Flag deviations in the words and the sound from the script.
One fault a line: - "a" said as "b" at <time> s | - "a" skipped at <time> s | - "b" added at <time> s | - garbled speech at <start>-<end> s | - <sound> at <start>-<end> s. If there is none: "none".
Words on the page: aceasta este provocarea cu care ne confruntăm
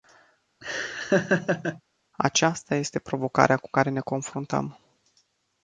- laugh at 0.6-1.8 s